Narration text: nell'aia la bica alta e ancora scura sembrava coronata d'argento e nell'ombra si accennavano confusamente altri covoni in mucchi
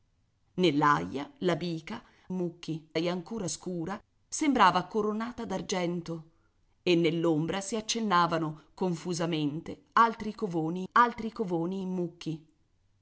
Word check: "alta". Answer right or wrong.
wrong